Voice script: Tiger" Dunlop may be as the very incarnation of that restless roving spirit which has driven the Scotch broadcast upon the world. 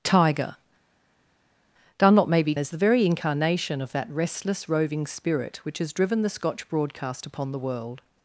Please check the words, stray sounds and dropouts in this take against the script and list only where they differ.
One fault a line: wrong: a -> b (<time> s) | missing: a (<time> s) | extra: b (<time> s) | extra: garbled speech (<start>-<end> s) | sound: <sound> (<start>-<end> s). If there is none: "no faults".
no faults